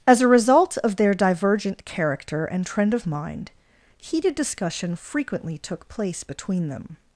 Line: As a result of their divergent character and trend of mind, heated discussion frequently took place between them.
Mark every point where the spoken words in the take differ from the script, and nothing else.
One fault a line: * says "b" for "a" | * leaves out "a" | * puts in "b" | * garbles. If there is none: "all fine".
all fine